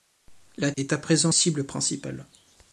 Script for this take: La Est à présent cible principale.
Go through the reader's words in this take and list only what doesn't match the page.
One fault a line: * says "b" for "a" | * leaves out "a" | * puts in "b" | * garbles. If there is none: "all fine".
all fine